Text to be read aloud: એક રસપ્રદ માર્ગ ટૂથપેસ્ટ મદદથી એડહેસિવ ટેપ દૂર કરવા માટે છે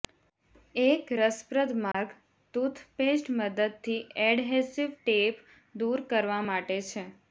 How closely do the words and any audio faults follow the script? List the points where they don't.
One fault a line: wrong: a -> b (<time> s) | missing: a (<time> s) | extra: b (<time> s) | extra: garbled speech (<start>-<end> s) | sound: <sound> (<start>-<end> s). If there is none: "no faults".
sound: dropout (1.9-1.9 s)